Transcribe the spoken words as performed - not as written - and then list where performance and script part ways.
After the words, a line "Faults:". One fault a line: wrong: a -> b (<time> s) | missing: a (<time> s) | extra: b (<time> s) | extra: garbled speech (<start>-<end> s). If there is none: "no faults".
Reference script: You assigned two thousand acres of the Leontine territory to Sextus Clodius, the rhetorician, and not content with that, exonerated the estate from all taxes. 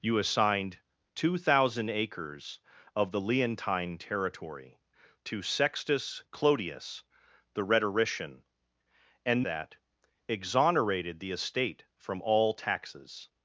You assigned two thousand acres of the Leontine territory to Sextus Clodius, the rhetorician, and that, exonerated the estate from all taxes.
Faults:
missing: not content with (9.4 s)